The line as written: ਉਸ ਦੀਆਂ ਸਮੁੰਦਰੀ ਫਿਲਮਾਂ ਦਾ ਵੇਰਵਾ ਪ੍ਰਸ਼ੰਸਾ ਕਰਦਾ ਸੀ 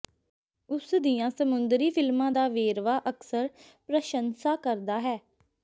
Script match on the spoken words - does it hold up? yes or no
no